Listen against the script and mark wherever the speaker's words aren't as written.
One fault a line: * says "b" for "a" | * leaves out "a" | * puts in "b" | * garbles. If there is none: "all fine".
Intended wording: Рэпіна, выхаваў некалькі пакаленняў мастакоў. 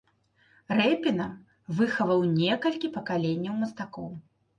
all fine